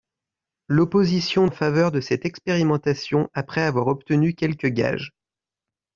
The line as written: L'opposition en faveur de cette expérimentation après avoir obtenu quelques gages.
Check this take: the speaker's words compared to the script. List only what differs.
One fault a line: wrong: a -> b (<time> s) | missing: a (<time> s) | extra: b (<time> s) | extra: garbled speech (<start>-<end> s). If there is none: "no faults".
no faults